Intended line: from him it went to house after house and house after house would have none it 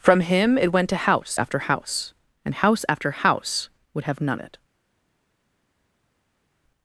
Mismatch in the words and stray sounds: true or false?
false